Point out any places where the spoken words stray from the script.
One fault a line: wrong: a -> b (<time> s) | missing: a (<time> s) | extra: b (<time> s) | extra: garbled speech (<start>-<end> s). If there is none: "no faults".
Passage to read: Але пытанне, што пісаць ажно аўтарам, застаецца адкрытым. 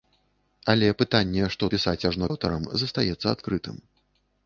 no faults